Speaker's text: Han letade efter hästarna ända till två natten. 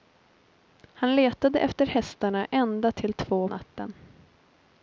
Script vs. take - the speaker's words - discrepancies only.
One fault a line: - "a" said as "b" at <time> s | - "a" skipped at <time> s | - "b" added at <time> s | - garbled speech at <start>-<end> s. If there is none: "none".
none